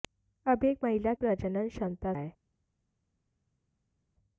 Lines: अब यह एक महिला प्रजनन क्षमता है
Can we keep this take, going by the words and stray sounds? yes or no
yes